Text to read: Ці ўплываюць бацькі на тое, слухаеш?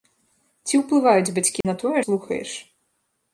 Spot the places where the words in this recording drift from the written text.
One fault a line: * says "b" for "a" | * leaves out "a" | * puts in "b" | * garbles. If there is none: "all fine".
all fine